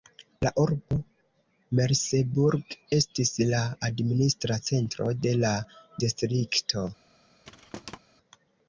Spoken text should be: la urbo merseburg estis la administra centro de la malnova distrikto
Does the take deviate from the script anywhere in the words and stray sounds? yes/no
yes